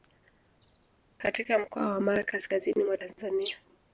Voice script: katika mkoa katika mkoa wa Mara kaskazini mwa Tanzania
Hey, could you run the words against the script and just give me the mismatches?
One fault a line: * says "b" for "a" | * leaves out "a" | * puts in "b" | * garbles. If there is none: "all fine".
* leaves out "katika mkoa"